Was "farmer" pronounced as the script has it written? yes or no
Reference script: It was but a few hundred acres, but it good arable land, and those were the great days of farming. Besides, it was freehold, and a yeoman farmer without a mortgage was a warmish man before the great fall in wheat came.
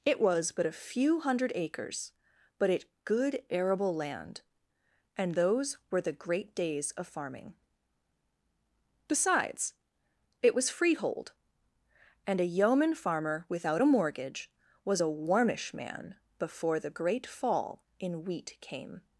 yes